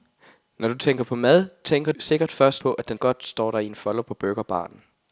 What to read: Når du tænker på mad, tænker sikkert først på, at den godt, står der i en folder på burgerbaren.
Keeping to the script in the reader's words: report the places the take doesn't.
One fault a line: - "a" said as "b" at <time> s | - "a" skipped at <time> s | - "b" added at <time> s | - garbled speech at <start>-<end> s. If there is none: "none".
none